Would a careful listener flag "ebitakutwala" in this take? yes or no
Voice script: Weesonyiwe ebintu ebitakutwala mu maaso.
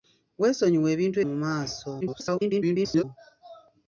yes